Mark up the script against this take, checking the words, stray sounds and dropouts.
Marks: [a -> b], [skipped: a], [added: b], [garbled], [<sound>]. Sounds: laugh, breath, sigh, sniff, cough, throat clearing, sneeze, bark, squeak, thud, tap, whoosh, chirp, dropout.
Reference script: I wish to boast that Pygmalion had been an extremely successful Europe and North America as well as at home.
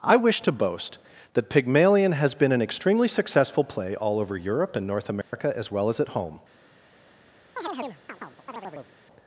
I wish to boast that Pygmalion [had -> has] been an extremely successful [added: play all over] Europe and North America [dropout] as well as at home. [chirp]